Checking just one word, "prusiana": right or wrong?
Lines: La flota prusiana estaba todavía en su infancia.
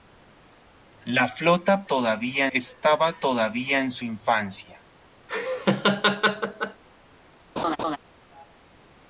wrong